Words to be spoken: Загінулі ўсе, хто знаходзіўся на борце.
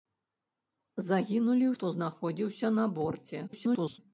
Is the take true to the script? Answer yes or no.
no